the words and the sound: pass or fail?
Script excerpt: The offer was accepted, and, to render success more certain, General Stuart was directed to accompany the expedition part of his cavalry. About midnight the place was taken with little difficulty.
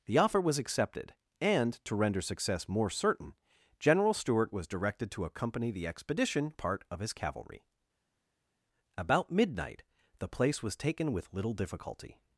pass